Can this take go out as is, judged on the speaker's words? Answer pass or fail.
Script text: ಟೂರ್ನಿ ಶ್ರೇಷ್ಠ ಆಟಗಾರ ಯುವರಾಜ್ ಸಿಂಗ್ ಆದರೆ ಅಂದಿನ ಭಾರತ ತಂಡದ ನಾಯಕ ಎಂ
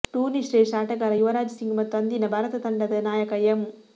fail